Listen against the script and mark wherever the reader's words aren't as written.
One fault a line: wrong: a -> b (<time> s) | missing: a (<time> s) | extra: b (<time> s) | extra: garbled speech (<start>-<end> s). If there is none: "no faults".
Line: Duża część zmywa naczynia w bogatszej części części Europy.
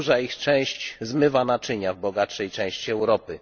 extra: ich (0.2 s)
missing: części (2.9 s)